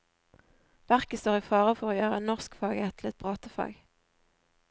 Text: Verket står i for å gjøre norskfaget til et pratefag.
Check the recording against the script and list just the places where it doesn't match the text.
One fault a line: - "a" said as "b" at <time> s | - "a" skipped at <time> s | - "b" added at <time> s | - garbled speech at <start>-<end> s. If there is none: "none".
- "fare" added at 1.5 s